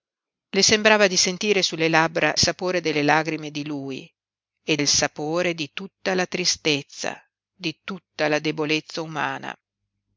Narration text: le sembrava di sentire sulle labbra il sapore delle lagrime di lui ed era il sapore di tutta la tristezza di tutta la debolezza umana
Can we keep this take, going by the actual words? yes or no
no